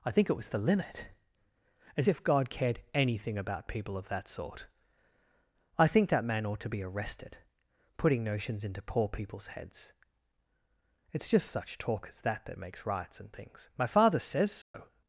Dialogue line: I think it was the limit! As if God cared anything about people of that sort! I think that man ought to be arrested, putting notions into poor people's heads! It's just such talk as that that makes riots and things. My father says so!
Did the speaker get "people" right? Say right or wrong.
right